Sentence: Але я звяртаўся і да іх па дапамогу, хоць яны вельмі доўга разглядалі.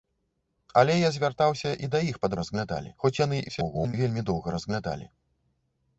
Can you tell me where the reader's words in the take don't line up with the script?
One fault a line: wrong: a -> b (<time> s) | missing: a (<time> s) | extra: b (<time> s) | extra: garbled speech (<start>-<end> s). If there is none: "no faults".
wrong: дапамогу -> разглядалі (2.4 s)
extra: garbled speech (3.5-3.9 s)